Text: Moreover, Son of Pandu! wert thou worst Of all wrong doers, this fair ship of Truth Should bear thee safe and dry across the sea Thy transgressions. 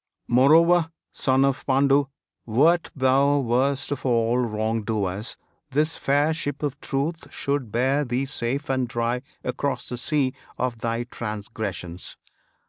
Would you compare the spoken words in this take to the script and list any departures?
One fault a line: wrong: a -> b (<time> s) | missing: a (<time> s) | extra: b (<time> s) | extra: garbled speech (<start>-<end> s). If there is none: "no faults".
extra: Of (10.6 s)